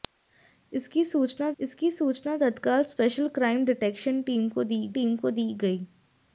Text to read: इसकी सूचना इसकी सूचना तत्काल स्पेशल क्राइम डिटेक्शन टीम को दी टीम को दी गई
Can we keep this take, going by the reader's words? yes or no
yes